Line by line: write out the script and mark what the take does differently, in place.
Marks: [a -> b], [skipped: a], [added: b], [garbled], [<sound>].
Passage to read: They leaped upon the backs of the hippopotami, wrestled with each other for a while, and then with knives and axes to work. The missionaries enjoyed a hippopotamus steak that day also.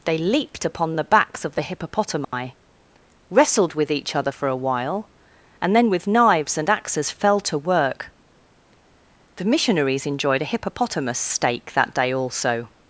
They leaped upon the backs of the hippopotami, [dropout] wrestled with each other for a while, and then with knives and axes [added: fell] to work. The missionaries enjoyed a hippopotamus steak that day also.